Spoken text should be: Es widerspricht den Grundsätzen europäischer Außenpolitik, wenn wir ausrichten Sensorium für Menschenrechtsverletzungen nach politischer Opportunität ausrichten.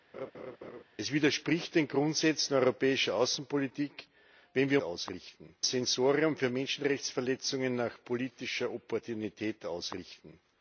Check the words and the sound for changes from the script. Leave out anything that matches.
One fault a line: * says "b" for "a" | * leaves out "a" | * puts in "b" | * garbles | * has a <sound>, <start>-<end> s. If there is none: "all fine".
* has a laugh, 0.1-0.8 s